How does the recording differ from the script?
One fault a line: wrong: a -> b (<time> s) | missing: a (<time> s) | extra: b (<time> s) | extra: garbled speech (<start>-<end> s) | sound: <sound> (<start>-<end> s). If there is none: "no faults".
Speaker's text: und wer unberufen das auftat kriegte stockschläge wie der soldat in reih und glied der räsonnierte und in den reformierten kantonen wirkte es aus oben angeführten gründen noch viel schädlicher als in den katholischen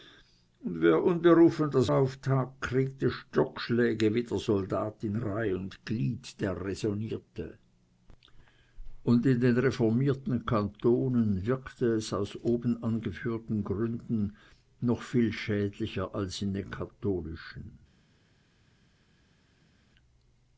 no faults